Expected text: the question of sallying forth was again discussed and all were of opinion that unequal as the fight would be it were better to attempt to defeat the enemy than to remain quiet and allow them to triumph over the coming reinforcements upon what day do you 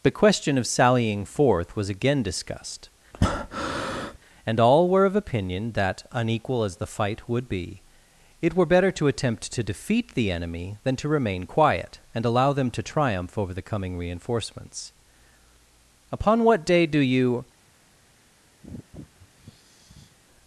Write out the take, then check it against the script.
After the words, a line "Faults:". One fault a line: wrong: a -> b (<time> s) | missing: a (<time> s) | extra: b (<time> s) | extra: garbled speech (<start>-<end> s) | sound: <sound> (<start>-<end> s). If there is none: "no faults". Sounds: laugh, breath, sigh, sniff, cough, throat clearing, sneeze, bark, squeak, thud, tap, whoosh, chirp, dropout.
the question of sallying forth was again discussed and all were of opinion that unequal as the fight would be it were better to attempt to defeat the enemy than to remain quiet and allow them to triumph over the coming reinforcements upon what day do you
Faults:
sound: breath (3.1-4.2 s)
sound: sigh (18.6-20.2 s)